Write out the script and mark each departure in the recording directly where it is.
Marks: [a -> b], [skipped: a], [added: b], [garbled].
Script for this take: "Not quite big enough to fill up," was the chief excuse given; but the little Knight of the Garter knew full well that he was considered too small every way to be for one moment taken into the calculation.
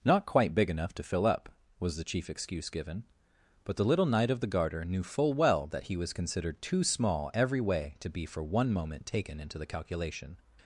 "Not quite big enough to fill up," was the chief excuse given; but the little Knight of the Garter knew full well that he was considered too small every way to be for one moment taken into the calculation.